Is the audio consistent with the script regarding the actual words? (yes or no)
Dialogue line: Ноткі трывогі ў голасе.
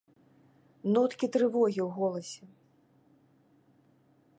yes